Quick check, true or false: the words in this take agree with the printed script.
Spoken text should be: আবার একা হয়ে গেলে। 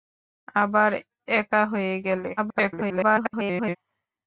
false